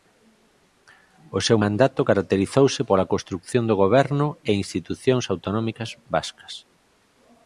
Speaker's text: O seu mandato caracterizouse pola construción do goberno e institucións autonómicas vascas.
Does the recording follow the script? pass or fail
pass